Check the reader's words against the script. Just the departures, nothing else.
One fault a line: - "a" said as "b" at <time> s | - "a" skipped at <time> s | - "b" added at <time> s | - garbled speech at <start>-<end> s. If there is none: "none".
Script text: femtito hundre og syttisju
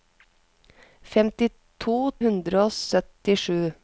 none